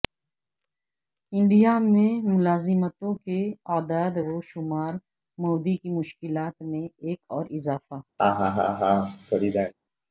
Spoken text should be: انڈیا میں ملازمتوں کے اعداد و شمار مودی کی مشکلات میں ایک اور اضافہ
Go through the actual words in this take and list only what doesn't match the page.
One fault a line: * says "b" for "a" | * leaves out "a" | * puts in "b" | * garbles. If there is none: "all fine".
all fine